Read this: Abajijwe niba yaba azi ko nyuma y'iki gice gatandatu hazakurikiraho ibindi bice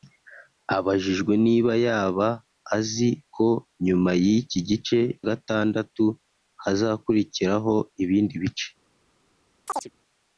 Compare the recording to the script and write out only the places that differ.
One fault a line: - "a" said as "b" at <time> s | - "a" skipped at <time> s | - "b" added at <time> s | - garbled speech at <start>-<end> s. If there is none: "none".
none